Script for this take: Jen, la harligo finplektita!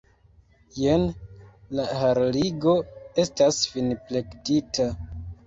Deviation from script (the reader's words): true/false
true